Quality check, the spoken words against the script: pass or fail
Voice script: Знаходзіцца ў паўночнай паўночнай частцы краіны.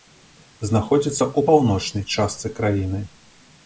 fail